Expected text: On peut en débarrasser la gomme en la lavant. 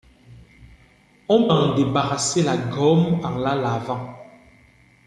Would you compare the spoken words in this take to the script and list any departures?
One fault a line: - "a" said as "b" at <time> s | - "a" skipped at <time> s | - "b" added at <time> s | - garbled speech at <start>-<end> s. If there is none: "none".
- "peut" skipped at 1.5 s